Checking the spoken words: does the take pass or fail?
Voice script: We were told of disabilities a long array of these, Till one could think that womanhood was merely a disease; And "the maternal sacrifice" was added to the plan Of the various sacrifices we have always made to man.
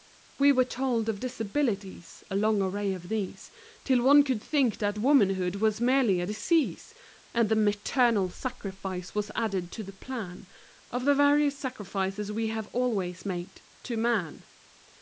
pass